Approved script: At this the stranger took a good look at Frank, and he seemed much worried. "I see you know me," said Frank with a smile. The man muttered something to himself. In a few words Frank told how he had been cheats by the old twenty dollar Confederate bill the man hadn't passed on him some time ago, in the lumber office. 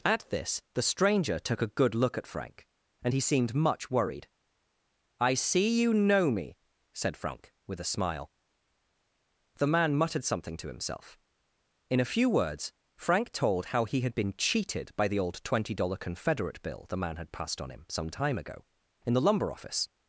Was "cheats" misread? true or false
true